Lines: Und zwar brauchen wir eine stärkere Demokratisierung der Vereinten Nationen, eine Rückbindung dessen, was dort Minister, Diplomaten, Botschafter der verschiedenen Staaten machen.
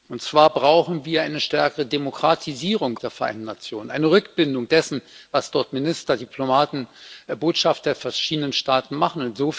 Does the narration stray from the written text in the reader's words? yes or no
no